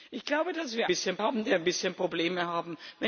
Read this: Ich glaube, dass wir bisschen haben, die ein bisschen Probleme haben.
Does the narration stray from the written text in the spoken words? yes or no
no